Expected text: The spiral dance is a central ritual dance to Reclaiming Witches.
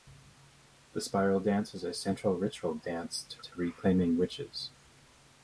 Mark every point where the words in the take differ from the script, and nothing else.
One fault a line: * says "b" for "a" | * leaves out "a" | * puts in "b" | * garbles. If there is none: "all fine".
* puts in "to"